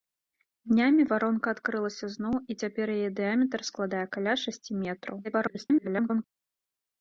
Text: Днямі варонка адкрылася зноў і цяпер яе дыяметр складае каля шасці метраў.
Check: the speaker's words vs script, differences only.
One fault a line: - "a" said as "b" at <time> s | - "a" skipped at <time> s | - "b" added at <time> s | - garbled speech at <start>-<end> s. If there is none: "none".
- garbled speech at 5.2-6.2 s